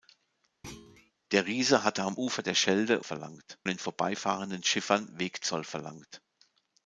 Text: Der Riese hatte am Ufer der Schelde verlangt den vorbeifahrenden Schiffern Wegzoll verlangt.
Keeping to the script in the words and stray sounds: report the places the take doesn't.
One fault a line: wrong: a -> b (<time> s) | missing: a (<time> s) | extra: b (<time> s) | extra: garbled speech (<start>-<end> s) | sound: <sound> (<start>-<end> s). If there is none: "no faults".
sound: thud (0.6-1.1 s)